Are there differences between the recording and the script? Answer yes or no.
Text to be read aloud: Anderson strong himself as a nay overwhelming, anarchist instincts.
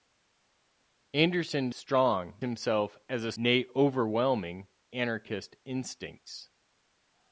no